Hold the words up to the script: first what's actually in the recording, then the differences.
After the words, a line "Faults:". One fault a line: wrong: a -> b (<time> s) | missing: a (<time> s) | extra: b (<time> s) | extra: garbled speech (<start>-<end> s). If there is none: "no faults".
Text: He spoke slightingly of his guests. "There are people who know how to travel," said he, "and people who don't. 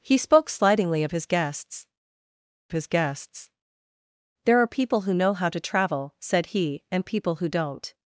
He spoke slightingly of his guests his guests. "There are people who know how to travel," said he, "and people who don't.
Faults:
extra: his guests (2.7 s)